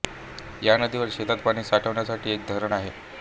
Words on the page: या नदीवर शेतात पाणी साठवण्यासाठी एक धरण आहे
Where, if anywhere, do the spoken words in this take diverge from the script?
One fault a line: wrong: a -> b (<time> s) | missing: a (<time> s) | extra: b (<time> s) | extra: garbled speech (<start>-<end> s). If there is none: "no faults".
no faults